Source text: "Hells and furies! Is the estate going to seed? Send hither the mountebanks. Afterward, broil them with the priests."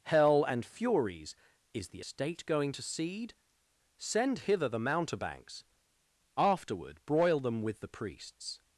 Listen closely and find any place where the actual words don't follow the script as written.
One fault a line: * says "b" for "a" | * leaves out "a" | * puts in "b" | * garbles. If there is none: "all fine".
* says "Hell" for "Hells"